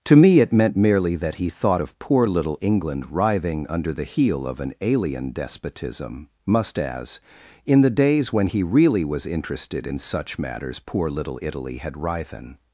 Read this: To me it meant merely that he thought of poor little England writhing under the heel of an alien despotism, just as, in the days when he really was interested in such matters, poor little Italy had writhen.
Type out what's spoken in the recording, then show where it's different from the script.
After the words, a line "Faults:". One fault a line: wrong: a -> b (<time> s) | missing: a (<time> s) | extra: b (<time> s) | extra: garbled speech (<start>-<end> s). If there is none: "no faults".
To me it meant merely that he thought of poor little England writhing under the heel of an alien despotism, must as, in the days when he really was interested in such matters, poor little Italy had writhen.
Faults:
wrong: just -> must (6.5 s)